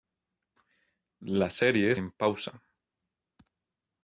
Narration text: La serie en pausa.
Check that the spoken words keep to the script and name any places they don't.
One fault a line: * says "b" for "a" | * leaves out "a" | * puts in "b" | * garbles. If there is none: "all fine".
all fine